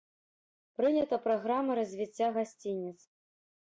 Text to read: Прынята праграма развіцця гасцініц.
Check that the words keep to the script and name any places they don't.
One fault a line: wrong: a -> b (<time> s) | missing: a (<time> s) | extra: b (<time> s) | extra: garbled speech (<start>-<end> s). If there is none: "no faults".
no faults